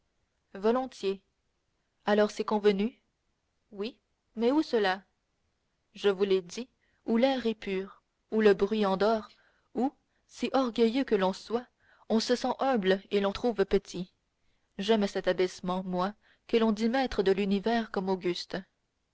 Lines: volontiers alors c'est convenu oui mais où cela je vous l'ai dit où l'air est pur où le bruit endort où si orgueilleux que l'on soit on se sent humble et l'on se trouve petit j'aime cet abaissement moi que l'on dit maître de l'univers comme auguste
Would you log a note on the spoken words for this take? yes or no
yes